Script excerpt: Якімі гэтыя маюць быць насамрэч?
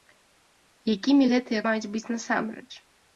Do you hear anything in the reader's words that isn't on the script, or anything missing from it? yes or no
no